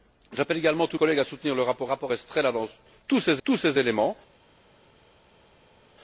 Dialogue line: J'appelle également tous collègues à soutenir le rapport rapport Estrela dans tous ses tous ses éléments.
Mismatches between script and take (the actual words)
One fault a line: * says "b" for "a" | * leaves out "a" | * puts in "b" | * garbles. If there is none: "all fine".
all fine